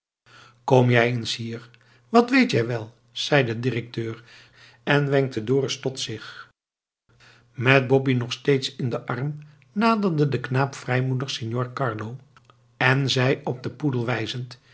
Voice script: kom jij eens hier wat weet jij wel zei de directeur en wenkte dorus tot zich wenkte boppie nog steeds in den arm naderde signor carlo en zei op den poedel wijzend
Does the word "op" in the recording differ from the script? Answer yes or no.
no